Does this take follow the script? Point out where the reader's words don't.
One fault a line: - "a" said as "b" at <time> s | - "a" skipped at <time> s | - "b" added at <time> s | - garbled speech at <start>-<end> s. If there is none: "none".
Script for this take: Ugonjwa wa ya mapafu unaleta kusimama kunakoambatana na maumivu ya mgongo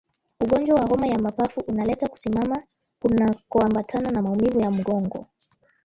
- "homa" added at 0.9 s